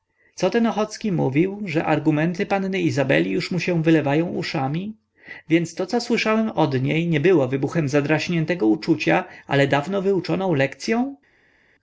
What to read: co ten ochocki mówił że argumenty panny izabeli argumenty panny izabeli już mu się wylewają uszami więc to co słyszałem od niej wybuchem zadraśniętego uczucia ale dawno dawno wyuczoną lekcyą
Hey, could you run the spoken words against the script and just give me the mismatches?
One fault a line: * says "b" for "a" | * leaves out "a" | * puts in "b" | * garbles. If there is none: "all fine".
* leaves out "argumenty panny izabeli"
* puts in "nie było"
* leaves out "dawno"